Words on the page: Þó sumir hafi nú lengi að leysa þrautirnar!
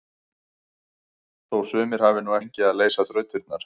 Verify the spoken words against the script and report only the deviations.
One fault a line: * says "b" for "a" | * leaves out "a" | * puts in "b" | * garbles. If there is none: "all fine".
all fine